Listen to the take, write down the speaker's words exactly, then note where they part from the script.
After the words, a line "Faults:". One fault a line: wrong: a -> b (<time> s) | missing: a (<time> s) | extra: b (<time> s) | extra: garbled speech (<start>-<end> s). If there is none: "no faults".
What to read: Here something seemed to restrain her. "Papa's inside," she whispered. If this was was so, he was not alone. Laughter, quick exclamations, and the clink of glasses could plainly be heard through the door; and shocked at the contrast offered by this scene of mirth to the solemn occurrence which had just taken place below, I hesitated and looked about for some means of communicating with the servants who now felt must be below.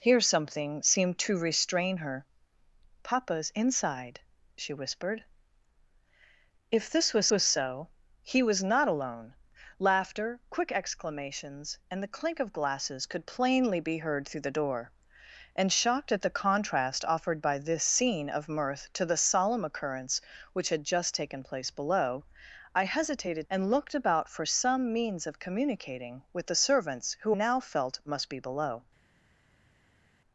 Here something seemed to restrain her. "Papa's inside," she whispered. If this was was so, he was not alone. Laughter, quick exclamations, and the clink of glasses could plainly be heard through the door; and shocked at the contrast offered by this scene of mirth to the solemn occurrence which had just taken place below, I hesitated and looked about for some means of communicating with the servants who now felt must be below.
Faults:
no faults